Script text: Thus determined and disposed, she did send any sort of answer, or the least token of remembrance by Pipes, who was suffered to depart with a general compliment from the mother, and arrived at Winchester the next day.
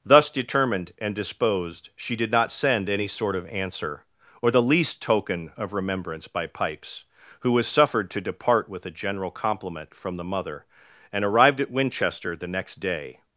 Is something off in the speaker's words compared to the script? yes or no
yes